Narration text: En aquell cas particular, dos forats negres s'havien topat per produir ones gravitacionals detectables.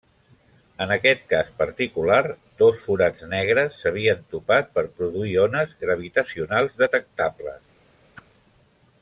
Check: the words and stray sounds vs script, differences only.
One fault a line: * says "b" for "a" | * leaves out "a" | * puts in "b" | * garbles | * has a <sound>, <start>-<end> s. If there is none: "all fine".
* says "aquest" for "aquell"
* has a whoosh, 8.1-8.3 s